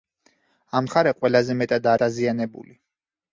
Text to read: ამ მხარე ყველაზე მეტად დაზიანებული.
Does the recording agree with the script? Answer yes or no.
yes